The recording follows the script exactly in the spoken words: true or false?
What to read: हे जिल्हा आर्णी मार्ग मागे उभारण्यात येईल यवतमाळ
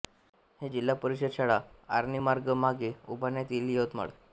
false